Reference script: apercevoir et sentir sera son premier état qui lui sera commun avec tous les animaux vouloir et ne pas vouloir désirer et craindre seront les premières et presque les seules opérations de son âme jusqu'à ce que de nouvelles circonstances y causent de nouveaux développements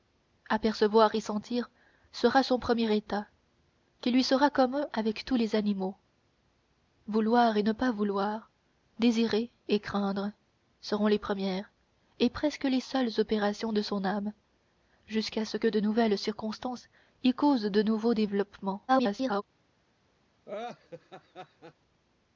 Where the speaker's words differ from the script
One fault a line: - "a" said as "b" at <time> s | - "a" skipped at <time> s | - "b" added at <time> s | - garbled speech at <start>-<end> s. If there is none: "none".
- garbled speech at 18.9-19.4 s